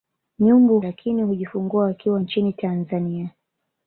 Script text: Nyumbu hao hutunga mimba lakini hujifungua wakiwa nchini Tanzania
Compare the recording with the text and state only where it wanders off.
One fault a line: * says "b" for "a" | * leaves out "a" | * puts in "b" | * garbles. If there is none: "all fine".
* leaves out "hao hutunga mimba"